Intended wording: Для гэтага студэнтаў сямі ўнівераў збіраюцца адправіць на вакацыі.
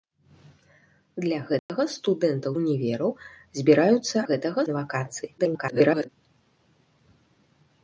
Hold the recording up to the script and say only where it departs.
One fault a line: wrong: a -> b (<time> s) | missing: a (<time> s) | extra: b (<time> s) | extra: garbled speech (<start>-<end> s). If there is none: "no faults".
missing: сямі (2.5 s)
wrong: адправіць -> гэтага (4.3 s)
extra: garbled speech (5.4-6.1 s)